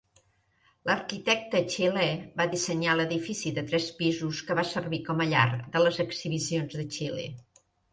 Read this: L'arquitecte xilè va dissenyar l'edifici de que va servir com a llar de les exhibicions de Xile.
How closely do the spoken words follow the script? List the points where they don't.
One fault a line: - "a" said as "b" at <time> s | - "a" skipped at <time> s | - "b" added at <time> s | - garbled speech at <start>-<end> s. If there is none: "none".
- "tres pisos" added at 3.7 s